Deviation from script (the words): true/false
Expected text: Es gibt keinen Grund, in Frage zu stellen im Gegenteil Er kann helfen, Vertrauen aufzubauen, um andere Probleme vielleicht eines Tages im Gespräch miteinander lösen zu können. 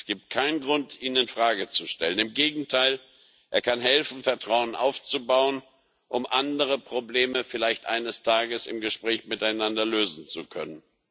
true